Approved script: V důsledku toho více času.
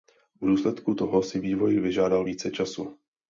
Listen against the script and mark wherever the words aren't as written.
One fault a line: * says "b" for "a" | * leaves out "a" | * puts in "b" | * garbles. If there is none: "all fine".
* puts in "si vývoj vyžádal"